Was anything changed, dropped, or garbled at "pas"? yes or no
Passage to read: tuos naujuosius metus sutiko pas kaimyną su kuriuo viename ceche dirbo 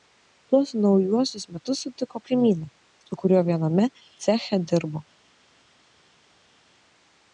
yes